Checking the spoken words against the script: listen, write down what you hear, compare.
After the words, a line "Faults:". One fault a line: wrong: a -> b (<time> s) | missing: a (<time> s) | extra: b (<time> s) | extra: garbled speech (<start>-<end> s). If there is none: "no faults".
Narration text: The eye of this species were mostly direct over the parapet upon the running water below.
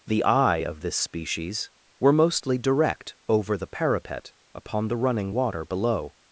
The eye of this species were mostly direct over the parapet upon the running water below.
Faults:
no faults